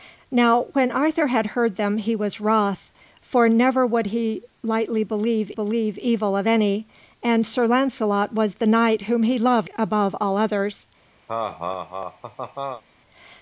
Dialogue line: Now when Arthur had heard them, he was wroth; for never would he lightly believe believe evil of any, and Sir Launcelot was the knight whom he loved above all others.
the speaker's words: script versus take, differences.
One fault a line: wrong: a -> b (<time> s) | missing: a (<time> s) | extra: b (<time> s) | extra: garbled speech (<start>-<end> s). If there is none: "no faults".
no faults